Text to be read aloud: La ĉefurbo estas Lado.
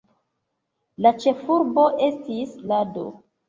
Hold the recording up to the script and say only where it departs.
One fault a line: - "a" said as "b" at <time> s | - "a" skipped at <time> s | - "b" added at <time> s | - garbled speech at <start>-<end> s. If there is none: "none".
- "estas" said as "estis" at 2.1 s